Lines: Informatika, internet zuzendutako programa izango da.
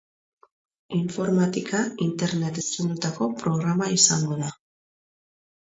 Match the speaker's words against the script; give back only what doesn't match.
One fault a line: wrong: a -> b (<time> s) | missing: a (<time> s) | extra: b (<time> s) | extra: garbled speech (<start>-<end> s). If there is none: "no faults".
no faults